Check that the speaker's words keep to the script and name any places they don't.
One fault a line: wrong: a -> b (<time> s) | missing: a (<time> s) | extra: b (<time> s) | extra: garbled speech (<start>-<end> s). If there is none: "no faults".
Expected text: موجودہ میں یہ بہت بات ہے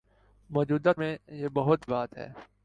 no faults